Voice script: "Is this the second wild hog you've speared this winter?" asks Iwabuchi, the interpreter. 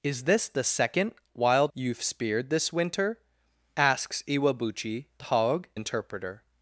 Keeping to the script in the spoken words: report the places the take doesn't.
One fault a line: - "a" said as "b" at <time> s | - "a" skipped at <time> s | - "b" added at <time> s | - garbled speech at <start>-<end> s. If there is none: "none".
- "hog" skipped at 1.7 s
- "the" said as "hog" at 5.2 s